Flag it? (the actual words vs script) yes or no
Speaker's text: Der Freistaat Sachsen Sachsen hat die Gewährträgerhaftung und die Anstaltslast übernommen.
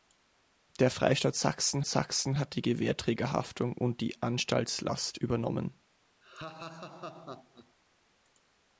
no